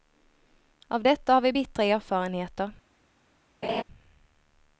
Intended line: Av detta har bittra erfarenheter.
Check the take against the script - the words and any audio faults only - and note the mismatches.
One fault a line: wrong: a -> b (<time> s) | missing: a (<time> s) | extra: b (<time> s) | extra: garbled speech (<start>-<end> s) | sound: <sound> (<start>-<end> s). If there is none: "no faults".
extra: vi (1.4 s)
sound: laugh (3.6-3.8 s)